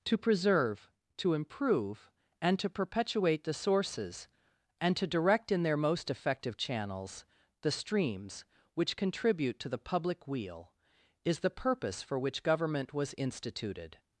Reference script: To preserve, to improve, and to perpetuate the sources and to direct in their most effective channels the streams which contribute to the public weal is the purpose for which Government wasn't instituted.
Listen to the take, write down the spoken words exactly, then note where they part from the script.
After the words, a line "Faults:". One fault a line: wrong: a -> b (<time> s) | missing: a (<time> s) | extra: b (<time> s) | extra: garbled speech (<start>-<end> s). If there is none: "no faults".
To preserve, to improve, and to perpetuate the sources and to direct in their most effective channels the streams which contribute to the public weal is the purpose for which Government was instituted.
Faults:
wrong: wasn't -> was (12.9 s)